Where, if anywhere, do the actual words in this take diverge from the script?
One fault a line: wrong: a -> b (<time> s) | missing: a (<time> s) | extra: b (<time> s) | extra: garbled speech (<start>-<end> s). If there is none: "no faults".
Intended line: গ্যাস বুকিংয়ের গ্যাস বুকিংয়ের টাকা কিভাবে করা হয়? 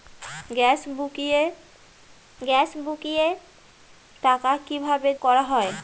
no faults